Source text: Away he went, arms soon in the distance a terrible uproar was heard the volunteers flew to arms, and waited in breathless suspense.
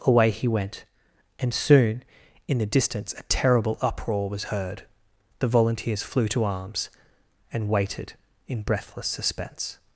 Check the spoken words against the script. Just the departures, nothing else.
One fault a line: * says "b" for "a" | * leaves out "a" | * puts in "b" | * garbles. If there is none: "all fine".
* says "and" for "arms"